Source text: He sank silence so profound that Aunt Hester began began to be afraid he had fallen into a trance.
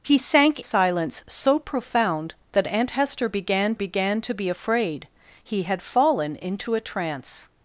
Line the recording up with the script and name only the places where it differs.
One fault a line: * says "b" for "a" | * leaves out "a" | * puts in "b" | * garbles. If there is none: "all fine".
all fine